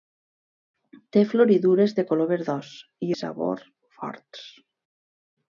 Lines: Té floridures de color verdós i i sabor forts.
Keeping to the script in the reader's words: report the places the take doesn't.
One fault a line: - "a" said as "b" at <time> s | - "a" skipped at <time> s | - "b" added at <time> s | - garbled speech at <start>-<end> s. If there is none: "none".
none